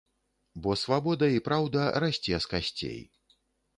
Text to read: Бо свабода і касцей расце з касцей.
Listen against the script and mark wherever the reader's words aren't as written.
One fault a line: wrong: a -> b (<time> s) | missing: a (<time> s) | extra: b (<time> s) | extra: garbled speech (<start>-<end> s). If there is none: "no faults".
wrong: касцей -> праўда (1.5 s)